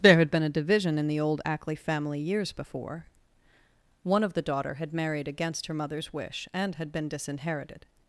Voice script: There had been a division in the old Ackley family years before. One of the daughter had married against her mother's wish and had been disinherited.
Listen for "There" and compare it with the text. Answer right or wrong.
right